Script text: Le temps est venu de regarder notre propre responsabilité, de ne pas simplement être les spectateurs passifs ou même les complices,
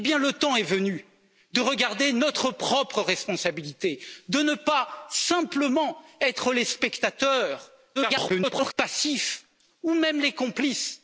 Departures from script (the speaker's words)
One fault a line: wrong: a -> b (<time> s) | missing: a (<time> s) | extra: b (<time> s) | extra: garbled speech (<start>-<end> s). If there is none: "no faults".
extra: garbled speech (7.9-8.7 s)